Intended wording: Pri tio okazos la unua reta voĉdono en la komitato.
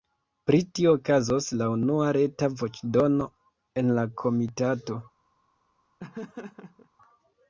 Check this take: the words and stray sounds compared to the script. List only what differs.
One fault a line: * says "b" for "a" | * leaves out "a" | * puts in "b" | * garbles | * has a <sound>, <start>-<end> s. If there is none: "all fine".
* has a laugh, 6.0-6.9 s